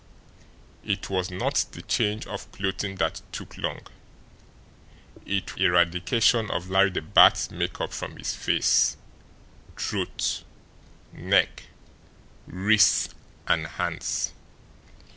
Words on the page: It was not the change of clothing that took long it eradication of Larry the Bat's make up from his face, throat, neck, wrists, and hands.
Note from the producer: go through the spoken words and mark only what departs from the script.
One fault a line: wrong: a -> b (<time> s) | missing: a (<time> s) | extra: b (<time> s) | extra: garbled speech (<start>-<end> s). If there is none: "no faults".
no faults